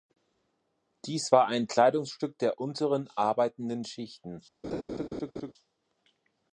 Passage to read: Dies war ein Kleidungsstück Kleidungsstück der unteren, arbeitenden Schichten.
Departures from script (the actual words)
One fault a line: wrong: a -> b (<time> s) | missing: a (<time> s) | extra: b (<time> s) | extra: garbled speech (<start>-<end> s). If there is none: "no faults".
missing: Kleidungsstück (2.4 s)